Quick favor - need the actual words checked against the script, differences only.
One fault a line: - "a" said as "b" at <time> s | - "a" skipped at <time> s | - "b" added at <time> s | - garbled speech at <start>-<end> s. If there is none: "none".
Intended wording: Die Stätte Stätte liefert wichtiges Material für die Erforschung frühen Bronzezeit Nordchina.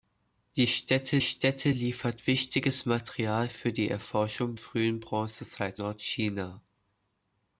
none